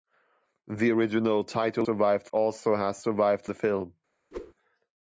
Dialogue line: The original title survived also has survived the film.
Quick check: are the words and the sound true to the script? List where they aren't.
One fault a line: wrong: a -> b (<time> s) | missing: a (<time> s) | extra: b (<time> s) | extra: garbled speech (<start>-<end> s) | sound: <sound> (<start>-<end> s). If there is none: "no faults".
sound: whoosh (4.3-4.5 s)